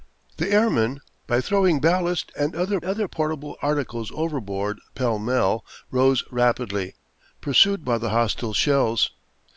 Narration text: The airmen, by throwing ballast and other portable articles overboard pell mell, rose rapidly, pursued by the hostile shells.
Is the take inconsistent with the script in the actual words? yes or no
yes